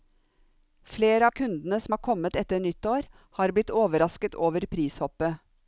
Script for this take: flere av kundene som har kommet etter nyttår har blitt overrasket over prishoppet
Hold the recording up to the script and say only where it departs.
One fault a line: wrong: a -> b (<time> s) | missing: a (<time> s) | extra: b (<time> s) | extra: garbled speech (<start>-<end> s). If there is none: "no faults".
no faults